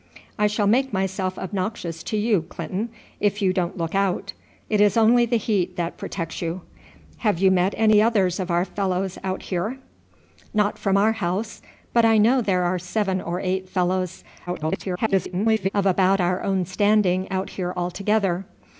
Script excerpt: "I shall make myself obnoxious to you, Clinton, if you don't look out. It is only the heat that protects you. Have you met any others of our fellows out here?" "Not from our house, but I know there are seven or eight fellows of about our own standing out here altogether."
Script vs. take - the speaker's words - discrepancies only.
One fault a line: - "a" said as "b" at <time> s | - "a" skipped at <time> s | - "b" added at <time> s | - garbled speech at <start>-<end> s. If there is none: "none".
- garbled speech at 14.5-15.7 s